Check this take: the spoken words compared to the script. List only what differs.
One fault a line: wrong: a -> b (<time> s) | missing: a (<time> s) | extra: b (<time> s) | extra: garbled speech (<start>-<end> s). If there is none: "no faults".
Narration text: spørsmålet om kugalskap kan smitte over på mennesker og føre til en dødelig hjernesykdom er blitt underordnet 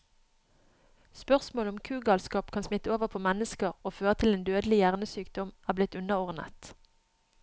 no faults